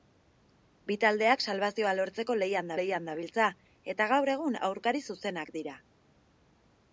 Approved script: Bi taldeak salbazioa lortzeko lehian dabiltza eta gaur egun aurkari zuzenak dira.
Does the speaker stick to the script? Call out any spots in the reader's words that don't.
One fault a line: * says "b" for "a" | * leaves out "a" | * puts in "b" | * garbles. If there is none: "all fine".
* puts in "lehian"